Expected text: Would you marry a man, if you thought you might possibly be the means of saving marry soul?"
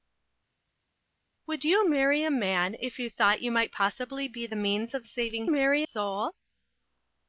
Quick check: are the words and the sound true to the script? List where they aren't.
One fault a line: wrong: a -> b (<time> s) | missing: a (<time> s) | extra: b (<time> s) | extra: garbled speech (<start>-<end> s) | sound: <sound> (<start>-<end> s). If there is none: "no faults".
no faults